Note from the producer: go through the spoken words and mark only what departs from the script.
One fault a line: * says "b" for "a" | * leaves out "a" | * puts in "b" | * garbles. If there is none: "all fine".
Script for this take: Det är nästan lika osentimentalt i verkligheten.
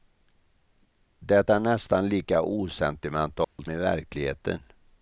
all fine